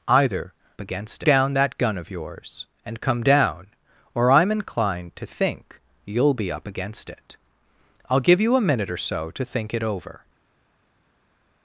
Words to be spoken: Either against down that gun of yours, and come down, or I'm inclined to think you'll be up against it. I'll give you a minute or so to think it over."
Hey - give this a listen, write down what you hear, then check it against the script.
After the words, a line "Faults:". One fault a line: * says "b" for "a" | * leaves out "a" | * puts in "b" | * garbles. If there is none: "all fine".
Either against down that gun of yours, and come down, or I'm inclined to think you'll be up against it. I'll give you a minute or so to think it over."
Faults:
all fine